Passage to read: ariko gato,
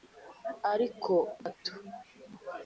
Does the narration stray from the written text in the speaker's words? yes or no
no